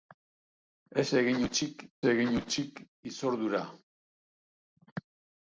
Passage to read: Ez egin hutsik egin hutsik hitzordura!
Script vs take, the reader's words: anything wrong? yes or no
no